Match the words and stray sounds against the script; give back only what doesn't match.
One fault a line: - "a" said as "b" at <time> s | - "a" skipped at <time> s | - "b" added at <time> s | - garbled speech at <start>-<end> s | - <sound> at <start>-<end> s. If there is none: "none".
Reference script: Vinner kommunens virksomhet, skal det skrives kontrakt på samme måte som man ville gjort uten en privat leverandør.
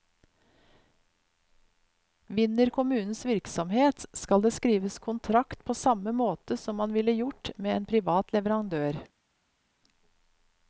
- "uten" said as "med" at 7.5 s